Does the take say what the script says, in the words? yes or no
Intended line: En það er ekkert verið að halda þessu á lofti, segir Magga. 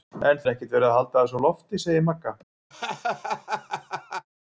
no